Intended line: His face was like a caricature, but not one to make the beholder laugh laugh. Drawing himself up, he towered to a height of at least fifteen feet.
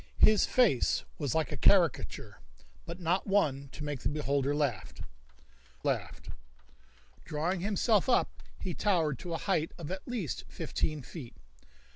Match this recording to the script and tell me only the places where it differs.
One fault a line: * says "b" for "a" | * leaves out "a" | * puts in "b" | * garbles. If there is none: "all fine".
all fine